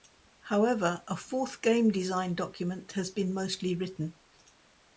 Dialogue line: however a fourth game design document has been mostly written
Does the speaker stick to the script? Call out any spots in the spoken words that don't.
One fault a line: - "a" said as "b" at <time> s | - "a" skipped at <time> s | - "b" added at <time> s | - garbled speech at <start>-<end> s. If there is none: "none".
none